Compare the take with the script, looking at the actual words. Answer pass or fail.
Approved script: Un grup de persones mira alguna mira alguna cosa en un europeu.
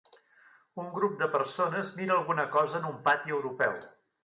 fail